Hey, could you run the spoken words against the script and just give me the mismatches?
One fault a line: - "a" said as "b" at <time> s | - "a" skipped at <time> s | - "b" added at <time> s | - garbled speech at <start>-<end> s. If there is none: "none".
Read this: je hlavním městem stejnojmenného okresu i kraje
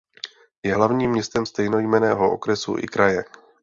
none